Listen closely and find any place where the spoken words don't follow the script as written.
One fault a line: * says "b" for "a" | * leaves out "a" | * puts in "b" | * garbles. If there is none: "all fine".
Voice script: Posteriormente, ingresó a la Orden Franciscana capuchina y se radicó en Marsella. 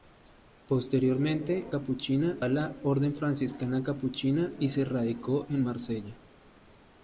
* says "capuchina" for "ingresó"